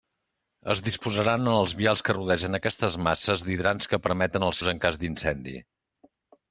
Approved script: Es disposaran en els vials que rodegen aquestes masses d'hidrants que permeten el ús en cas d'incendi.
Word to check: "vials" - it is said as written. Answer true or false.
true